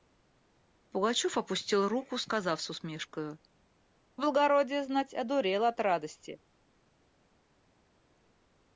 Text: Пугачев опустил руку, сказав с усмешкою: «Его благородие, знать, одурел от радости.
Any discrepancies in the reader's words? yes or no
yes